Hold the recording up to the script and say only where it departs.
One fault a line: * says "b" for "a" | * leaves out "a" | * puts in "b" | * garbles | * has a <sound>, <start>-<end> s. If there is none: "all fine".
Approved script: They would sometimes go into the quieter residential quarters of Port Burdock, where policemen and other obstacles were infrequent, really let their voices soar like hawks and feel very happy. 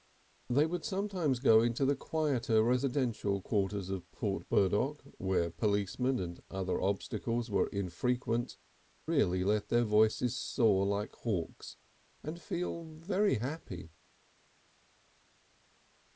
all fine